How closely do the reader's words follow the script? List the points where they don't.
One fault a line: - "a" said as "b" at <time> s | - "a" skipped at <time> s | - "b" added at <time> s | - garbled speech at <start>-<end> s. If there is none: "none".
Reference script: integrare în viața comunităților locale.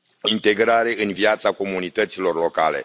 none